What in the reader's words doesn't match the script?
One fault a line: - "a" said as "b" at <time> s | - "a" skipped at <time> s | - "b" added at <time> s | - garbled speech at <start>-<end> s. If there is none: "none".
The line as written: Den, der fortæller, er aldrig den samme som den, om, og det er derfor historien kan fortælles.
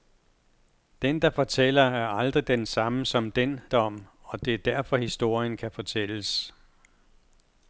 none